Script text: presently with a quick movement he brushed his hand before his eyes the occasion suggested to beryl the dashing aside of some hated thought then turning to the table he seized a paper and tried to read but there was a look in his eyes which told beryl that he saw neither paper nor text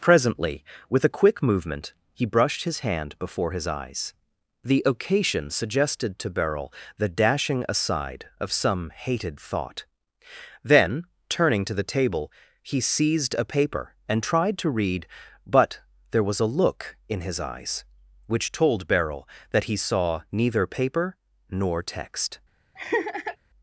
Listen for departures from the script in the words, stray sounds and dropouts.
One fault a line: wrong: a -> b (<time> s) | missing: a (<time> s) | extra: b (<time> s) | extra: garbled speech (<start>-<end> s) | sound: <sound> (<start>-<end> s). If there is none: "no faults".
sound: laugh (22.8-23.4 s)